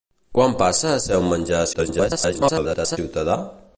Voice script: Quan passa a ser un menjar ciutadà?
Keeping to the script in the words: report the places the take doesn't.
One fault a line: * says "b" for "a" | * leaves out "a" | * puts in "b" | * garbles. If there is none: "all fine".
* garbles